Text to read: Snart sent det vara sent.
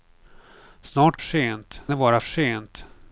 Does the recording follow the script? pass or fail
pass